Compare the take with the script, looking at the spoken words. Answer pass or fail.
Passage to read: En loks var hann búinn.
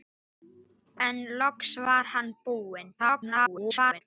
fail